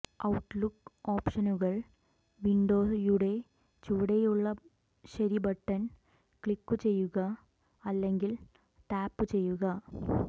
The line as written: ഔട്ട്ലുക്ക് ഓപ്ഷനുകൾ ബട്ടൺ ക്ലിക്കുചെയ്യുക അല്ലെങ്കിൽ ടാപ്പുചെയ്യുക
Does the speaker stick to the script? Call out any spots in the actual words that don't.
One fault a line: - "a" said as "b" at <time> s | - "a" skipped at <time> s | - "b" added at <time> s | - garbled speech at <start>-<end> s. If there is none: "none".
- "വിൻഡോയുടെ ചുവടെയുള്ള ശരി" added at 2.4 s